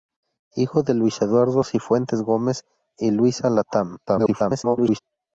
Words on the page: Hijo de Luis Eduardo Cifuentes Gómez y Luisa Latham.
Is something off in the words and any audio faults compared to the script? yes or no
yes